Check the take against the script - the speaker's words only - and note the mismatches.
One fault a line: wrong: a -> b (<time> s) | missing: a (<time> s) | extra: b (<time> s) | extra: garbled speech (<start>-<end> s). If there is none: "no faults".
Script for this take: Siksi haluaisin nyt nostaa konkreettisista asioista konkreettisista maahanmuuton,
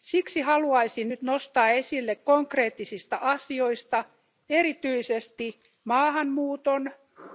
extra: esille (1.7 s)
wrong: konkreettisista -> erityisesti (4.5 s)